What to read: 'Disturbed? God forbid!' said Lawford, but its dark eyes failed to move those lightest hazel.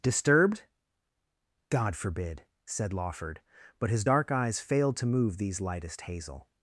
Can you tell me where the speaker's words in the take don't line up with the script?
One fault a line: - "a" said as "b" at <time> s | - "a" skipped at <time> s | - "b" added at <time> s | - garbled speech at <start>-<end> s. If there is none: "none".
- "its" said as "his" at 3.9 s
- "those" said as "these" at 5.4 s